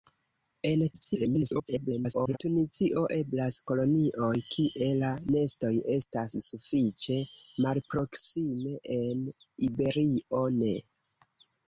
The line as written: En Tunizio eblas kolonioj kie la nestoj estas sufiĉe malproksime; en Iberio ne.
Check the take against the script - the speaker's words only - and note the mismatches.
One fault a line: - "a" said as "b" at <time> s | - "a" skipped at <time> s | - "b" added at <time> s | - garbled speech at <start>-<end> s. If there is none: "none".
- garbled speech at 0.9-2.4 s